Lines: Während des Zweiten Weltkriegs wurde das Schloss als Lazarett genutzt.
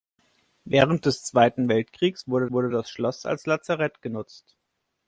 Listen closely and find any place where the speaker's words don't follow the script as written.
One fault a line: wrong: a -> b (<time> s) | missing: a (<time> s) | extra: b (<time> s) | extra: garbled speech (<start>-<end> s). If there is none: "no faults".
extra: wurde (2.5 s)